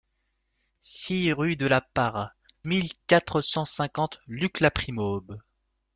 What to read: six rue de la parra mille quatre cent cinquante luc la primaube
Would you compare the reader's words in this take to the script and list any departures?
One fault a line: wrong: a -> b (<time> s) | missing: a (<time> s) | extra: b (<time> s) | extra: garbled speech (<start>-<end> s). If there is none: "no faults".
no faults